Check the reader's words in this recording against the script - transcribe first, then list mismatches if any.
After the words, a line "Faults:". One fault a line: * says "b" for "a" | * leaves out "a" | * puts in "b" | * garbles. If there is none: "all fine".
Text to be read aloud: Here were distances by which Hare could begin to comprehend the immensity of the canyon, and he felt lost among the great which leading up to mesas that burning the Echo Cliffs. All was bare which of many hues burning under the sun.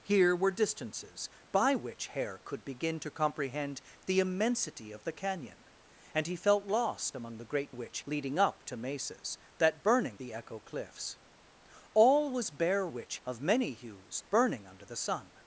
Here were distances by which Hare could begin to comprehend the immensity of the canyon, and he felt lost among the great which leading up to mesas that burning the Echo Cliffs. All was bare which of many hues burning under the sun.
Faults:
all fine